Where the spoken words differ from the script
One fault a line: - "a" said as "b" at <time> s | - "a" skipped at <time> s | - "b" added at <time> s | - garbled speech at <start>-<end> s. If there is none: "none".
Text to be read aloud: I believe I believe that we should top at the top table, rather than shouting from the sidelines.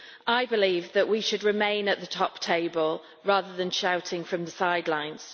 - "I believe" skipped at 0.9 s
- "top" said as "remain" at 1.4 s